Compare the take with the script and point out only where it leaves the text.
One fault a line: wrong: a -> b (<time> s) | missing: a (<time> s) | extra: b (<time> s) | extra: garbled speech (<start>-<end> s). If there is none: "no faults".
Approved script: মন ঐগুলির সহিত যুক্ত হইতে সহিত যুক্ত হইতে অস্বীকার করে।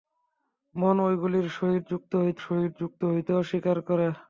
no faults